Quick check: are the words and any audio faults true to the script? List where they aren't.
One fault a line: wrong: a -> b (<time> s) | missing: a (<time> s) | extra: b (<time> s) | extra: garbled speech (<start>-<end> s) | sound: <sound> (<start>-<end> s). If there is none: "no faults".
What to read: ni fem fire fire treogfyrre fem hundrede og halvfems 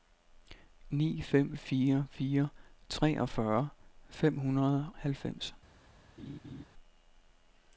missing: og (4.9 s)
sound: laugh (6.2-6.6 s)